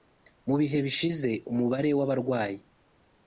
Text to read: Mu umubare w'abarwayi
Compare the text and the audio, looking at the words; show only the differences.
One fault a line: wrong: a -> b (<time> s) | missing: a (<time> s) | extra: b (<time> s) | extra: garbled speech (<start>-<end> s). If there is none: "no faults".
extra: bihe bishize (0.6 s)